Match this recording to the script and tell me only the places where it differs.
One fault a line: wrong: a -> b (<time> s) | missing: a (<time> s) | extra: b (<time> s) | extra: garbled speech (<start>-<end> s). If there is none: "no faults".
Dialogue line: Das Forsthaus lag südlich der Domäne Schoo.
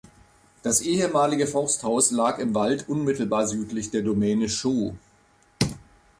extra: ehemalige (0.8 s)
extra: im Wald unmittelbar (2.4 s)